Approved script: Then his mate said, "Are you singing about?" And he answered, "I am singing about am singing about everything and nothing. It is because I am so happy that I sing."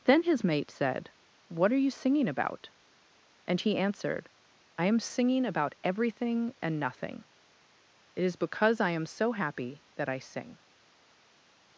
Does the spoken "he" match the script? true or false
true